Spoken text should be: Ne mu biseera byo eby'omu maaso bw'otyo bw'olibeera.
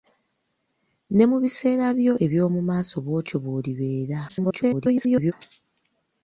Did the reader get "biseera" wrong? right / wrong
right